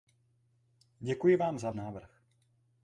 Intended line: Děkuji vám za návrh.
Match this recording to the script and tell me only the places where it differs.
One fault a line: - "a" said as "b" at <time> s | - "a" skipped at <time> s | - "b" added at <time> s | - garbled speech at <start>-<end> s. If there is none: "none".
none